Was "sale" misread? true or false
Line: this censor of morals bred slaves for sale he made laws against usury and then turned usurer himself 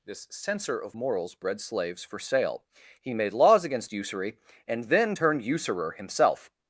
false